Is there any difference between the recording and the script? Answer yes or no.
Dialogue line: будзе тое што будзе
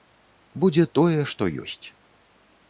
yes